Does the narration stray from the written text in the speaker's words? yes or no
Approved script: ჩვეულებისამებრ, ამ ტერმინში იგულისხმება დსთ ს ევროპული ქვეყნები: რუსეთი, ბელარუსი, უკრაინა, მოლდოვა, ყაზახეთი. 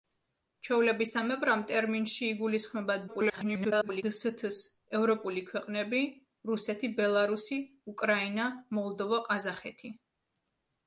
yes